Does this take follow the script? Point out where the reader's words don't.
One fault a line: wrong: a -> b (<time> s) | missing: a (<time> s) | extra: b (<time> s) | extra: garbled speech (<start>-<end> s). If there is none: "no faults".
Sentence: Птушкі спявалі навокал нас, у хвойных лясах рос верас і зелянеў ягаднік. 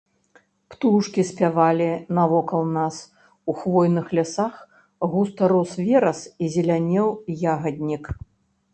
extra: густа (5.2 s)